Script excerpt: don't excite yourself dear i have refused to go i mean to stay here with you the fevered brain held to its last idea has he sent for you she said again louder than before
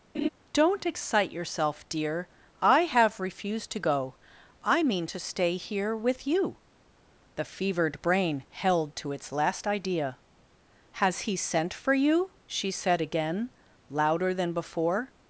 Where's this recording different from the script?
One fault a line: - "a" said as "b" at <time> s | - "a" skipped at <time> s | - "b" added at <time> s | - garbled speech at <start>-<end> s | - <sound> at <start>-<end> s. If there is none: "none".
- laugh at 0.1-0.3 s